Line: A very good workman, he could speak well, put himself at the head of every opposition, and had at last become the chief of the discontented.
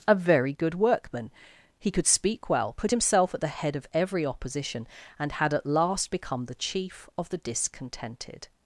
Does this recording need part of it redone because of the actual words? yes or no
no